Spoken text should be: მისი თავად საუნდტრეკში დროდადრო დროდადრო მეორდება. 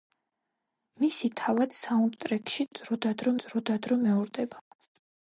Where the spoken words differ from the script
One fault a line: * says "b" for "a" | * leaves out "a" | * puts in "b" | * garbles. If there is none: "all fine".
all fine